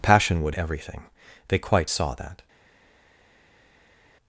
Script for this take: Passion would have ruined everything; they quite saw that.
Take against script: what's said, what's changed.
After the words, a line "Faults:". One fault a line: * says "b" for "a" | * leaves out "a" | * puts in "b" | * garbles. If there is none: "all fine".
Passion would everything; they quite saw that.
Faults:
* leaves out "have ruined"